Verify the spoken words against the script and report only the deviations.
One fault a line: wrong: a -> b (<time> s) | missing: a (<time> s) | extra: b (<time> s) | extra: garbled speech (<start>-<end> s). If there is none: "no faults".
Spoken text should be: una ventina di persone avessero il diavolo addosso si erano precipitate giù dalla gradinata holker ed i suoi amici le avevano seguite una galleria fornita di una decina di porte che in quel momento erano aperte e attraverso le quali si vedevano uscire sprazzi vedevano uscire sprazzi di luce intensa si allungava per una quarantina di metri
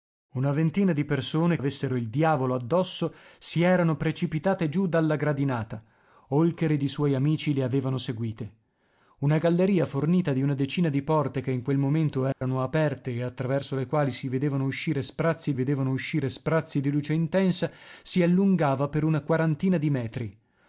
no faults